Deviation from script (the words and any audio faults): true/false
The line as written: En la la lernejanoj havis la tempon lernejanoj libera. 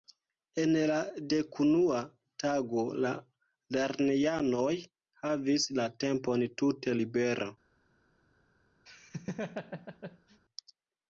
true